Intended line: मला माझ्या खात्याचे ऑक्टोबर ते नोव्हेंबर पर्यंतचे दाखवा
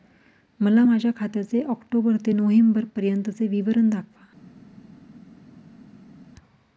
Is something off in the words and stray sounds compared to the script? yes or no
yes